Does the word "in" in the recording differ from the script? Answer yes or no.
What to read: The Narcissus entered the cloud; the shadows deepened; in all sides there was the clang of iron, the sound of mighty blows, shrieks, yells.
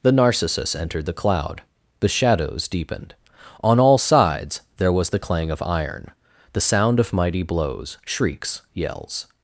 yes